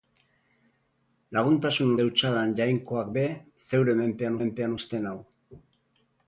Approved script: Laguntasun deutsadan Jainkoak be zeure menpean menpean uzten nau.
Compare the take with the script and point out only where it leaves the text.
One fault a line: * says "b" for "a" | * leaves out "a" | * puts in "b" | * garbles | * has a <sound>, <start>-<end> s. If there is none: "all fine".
all fine